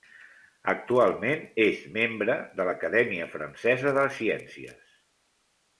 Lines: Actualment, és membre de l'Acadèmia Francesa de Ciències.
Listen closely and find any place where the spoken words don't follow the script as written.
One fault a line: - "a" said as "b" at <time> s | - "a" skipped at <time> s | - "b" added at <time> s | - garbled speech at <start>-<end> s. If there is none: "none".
none